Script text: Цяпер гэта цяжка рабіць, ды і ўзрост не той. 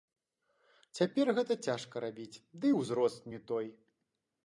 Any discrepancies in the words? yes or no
no